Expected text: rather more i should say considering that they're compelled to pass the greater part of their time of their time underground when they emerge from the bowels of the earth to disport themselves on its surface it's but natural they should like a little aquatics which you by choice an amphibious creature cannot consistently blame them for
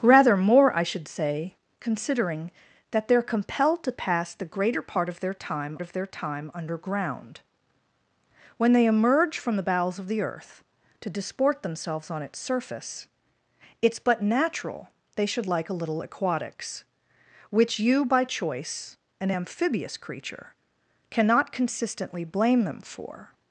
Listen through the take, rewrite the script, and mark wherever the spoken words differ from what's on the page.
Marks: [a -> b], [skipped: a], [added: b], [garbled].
rather more i should say considering that they're compelled to pass the greater part of their time of their time underground when they emerge from the bowels of the earth to disport themselves on its surface it's but natural they should like a little aquatics which you by choice an amphibious creature cannot consistently blame them for